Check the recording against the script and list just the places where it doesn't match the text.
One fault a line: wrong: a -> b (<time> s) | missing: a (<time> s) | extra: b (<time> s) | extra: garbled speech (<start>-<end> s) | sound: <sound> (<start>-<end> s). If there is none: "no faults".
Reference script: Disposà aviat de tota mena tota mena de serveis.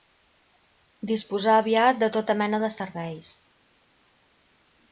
missing: tota mena (2.6 s)